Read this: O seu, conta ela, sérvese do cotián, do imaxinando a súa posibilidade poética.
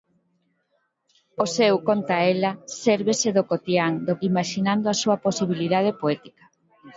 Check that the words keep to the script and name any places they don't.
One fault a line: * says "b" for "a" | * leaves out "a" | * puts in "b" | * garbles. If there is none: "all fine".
all fine